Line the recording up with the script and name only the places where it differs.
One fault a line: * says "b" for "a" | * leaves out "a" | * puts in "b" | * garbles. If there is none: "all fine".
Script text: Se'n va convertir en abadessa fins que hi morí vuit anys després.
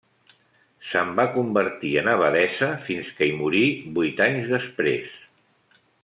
all fine